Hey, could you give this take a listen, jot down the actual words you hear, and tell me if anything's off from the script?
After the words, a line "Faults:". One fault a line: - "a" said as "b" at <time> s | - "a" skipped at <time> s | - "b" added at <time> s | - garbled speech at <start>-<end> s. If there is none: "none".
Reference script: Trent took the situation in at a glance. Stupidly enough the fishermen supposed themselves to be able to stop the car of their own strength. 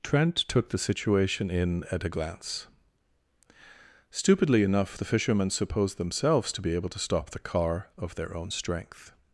Trent took the situation in at a glance. Stupidly enough the fishermen supposed themselves to be able to stop the car of their own strength.
Faults:
none